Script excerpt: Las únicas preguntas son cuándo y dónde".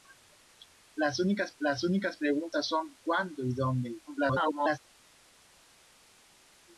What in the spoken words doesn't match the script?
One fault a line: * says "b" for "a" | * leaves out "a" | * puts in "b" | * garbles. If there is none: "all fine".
* puts in "las únicas"
* garbles